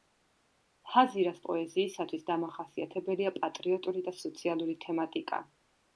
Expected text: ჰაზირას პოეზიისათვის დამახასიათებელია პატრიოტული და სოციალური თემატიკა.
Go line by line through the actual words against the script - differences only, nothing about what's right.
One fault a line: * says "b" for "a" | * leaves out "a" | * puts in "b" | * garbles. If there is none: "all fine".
all fine